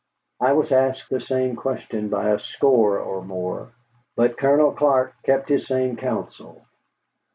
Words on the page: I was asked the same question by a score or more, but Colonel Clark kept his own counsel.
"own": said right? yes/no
no